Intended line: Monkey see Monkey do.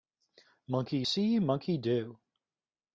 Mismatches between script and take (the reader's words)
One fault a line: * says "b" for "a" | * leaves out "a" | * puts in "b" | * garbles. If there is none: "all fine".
all fine